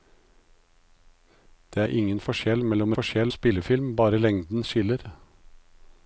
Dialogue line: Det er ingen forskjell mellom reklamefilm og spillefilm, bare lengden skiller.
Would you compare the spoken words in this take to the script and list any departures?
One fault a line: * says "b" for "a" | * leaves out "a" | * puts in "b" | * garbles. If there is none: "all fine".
* says "forskjell" for "reklamefilm"